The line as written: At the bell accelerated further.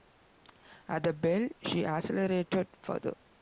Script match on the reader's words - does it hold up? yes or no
no